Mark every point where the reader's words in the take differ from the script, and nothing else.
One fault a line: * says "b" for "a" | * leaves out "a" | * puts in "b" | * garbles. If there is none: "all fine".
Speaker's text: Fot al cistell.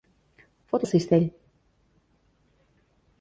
all fine